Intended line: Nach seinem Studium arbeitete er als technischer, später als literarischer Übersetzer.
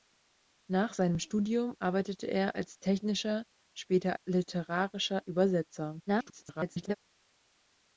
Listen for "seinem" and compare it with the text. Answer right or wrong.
right